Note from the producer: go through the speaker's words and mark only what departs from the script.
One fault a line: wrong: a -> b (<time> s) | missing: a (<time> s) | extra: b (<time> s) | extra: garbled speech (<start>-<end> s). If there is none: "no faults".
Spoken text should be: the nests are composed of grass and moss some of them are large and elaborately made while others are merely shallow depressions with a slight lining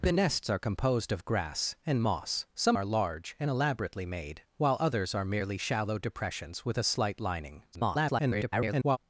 missing: of them (2.8 s)
extra: garbled speech (7.7-9.0 s)